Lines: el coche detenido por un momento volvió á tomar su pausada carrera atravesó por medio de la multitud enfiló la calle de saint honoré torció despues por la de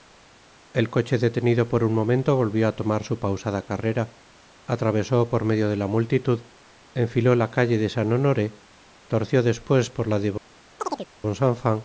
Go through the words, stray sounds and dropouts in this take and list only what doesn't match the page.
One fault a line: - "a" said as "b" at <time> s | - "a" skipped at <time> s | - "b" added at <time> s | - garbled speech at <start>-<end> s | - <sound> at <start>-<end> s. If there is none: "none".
- chirp at 10.8-11.1 s